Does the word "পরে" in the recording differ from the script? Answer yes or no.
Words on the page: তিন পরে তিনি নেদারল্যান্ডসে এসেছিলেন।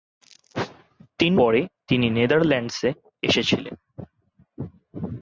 no